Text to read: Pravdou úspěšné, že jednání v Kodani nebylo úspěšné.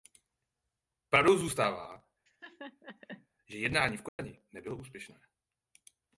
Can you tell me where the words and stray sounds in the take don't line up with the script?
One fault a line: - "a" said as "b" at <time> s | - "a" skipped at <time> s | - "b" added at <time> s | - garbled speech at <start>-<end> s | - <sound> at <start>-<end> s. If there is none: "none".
- "úspěšné" said as "zůstává" at 1.4 s
- laugh at 2.3-3.3 s
- dropout at 4.1-4.2 s